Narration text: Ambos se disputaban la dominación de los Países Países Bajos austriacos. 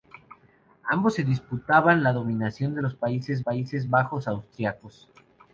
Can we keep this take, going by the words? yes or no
yes